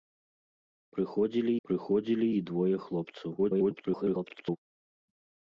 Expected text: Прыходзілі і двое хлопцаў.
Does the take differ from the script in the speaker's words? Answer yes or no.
yes